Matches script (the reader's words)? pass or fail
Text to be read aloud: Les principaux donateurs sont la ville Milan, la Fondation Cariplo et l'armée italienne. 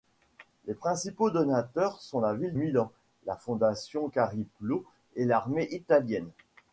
pass